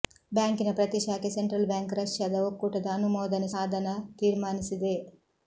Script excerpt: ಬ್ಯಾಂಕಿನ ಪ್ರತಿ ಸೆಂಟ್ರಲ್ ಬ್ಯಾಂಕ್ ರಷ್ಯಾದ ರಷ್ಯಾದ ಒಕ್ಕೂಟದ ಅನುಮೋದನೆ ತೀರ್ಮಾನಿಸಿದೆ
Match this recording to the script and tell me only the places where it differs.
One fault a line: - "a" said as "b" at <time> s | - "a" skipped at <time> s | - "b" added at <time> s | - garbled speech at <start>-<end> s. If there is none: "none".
- "ಶಾಖೆ" added at 1.0 s
- "ರಷ್ಯಾದ" skipped at 2.4 s
- "ಸಾಧನ" added at 3.5 s